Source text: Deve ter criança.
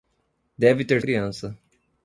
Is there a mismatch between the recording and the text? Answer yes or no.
no